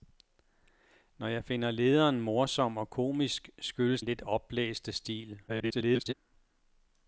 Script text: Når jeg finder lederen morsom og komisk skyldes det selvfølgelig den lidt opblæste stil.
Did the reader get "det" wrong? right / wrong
wrong